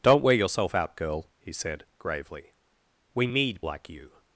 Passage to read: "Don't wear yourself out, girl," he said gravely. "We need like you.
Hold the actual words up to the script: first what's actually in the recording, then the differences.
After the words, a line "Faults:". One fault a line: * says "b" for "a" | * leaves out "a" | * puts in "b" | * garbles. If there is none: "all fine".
"Don't wear yourself out, girl," he said gravely. "We need like you.
Faults:
all fine